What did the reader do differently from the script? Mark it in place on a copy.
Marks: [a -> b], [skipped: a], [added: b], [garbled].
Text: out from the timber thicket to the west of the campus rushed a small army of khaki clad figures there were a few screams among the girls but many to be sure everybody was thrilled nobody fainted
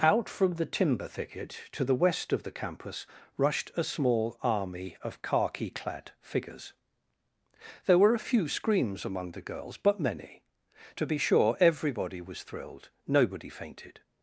out from the timber thicket to the west of the campus rushed a small army of khaki clad figures there were a few screams among the girls but many to be sure everybody was thrilled nobody fainted